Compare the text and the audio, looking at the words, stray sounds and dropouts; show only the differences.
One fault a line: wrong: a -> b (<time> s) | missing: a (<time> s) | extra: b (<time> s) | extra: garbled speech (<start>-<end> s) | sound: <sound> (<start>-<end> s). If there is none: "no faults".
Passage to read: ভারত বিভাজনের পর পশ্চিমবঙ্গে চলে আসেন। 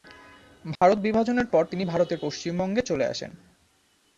sound: dropout (0.8-0.8 s)
extra: তিনি ভারতের (1.6 s)